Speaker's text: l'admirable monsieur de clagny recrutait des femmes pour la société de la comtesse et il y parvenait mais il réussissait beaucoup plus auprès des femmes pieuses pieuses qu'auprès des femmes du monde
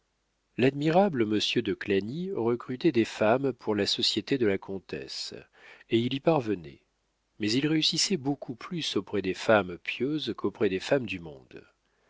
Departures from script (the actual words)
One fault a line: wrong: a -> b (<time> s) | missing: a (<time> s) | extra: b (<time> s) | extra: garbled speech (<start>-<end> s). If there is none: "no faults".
missing: pieuses (10.3 s)